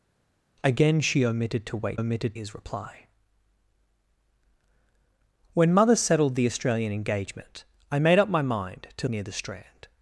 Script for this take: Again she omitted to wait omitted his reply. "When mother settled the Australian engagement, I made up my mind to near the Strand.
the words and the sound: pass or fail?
pass